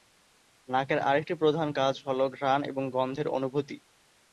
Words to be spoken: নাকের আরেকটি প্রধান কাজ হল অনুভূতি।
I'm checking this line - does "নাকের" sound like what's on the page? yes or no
yes